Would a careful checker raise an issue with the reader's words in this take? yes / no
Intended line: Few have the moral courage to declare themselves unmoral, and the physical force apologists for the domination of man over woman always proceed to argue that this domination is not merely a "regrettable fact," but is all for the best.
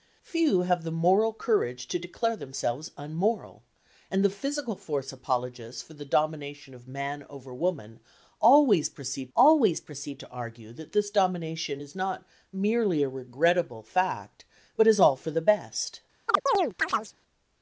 yes